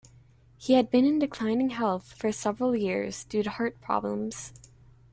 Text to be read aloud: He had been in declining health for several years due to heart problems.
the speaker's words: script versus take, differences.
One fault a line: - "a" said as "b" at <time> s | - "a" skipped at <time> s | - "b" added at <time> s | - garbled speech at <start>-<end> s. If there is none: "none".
none